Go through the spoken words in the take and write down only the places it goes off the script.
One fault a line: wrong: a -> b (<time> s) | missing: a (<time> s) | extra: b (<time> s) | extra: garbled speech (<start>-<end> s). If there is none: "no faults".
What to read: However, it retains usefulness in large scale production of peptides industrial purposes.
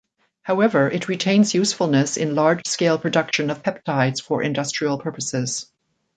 extra: for (4.2 s)